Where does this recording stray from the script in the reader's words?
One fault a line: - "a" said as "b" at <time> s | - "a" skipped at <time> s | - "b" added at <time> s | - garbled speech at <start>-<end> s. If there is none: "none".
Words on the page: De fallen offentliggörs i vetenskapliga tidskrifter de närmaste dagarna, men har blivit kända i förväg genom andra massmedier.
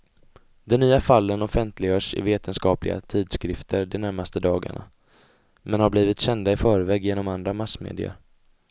- "nya" added at 0.8 s